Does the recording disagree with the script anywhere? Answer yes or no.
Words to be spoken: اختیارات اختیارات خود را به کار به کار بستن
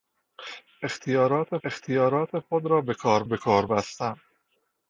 no